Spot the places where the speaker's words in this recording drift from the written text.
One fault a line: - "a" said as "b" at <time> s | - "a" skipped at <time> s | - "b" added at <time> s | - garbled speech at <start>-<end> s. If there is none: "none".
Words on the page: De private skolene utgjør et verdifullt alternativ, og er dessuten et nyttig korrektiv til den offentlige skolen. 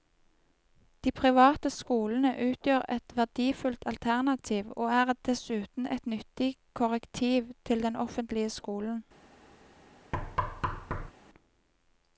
none